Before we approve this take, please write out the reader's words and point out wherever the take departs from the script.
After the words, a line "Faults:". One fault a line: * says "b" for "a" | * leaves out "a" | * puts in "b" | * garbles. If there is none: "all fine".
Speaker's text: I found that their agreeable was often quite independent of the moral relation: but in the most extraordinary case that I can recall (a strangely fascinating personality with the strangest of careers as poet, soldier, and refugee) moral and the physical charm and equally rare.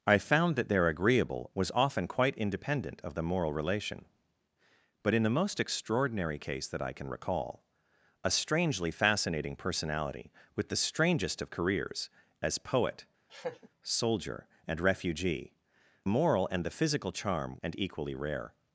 I found that their agreeable was often quite independent of the moral relation: but in the most extraordinary case that I can recall (a strangely fascinating personality with the strangest of careers as poet, soldier, and refugee) moral and the physical charm and equally rare.
Faults:
all fine